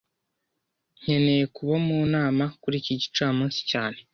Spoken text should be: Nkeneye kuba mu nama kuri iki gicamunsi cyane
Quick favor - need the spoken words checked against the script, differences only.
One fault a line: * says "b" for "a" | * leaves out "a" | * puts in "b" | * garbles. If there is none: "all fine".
all fine